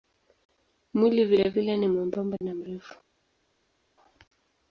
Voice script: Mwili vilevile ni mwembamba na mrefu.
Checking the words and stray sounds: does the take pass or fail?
pass